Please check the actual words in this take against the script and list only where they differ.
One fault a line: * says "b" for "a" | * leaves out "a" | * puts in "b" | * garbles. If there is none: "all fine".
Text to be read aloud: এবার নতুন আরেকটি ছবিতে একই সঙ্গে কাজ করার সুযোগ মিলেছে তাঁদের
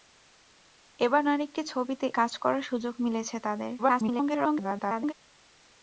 * leaves out "নতুন"
* leaves out "একই সঙ্গে"
* garbles